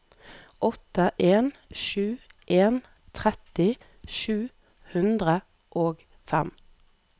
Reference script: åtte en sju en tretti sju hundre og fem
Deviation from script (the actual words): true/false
false